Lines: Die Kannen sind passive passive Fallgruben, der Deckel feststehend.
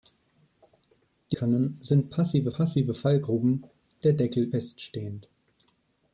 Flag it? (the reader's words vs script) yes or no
no